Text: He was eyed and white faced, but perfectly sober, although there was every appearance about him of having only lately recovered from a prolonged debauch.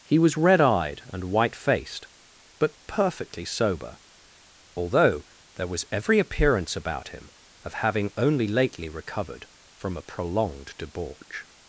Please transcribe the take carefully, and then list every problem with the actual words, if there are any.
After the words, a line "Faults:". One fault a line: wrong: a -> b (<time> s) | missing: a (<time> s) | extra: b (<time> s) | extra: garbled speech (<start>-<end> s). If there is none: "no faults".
He was red eyed and white faced, but perfectly sober, although there was every appearance about him of having only lately recovered from a prolonged debauch.
Faults:
extra: red (0.4 s)